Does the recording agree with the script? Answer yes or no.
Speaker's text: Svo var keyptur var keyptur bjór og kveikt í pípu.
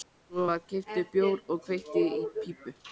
no